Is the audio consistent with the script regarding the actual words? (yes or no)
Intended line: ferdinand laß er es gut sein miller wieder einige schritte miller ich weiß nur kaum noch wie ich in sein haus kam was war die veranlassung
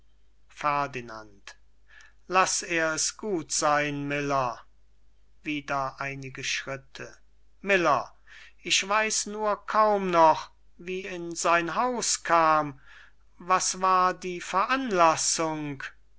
no